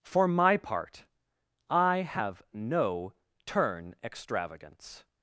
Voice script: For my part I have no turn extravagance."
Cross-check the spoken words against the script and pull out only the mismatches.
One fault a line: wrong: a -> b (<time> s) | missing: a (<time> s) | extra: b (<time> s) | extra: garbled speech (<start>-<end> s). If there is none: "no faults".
no faults